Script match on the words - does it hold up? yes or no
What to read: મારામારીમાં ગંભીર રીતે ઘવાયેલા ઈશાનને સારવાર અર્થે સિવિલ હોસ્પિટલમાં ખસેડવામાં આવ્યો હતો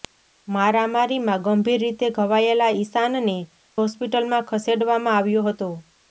no